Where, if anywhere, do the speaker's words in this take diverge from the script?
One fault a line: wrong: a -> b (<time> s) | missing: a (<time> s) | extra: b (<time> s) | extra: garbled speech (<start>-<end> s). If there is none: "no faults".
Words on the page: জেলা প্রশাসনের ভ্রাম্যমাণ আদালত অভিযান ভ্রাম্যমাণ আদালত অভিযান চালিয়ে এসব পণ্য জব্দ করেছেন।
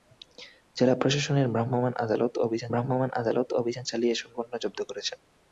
no faults